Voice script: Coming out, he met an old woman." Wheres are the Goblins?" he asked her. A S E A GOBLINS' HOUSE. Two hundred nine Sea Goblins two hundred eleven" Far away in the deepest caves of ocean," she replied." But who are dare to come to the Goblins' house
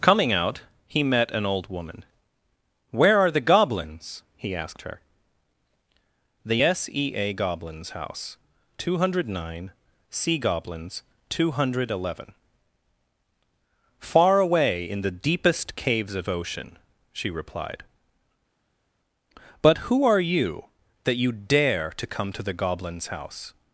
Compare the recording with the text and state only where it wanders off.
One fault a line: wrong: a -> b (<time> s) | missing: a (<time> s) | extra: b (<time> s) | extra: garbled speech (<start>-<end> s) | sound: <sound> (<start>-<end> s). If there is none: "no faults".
wrong: Wheres -> Where (2.9 s)
wrong: A -> THE (6.4 s)
extra: you that you (20.2 s)